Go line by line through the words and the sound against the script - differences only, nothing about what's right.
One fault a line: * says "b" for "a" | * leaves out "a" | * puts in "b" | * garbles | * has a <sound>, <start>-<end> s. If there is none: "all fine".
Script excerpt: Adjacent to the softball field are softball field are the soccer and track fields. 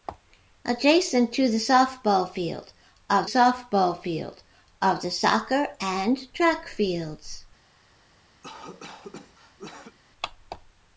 * has a cough, 8.4-10.0 s